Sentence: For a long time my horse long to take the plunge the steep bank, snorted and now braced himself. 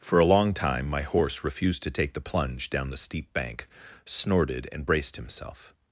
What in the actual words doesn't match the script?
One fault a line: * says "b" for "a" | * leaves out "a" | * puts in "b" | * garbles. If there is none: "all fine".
* says "refused" for "long"
* puts in "down"
* leaves out "now"